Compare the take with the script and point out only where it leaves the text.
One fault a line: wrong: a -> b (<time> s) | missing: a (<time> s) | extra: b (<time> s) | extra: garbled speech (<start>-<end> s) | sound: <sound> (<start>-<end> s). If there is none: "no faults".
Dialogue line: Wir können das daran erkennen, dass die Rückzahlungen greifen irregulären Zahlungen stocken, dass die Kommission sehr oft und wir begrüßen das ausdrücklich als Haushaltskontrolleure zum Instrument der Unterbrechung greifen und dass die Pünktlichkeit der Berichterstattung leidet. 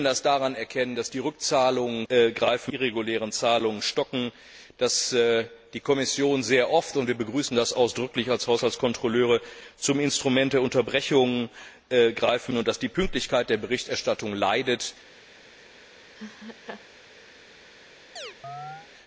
sound: laugh (16.1-16.9 s)
sound: chirp (18.2-18.9 s)